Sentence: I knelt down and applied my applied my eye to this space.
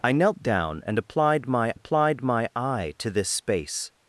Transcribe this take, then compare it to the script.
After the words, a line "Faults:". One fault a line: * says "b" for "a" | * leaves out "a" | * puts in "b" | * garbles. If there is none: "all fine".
I knelt down and applied my applied my eye to this space.
Faults:
all fine